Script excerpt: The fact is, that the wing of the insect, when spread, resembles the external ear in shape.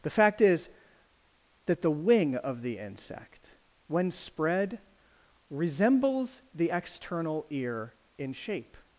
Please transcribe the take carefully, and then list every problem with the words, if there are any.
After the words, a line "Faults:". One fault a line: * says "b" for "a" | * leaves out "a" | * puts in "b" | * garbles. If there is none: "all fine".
The fact is, that the wing of the insect, when spread, resembles the external ear in shape.
Faults:
all fine